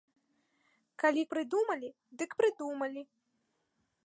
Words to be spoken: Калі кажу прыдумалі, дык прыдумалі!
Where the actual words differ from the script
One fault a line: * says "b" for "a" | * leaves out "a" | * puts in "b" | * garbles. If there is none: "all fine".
* leaves out "кажу"